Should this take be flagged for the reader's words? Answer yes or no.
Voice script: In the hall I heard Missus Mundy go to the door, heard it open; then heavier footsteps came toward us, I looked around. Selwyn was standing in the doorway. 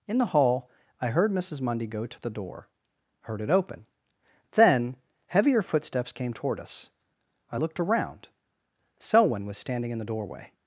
no